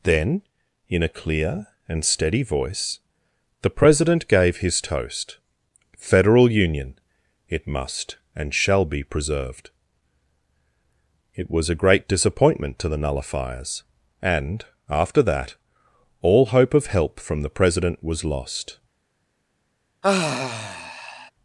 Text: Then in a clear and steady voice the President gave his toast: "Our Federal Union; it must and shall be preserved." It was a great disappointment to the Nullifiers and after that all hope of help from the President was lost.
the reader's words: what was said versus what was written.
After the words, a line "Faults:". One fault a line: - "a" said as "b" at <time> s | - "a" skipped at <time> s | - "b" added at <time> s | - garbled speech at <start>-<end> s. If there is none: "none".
Then in a clear and steady voice the President gave his toast: "Federal Union; it must and shall be preserved." It was a great disappointment to the Nullifiers and after that all hope of help from the President was lost.
Faults:
- "Our" skipped at 5.4 s